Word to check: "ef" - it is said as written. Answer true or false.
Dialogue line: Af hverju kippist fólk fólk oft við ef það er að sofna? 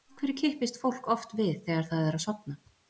false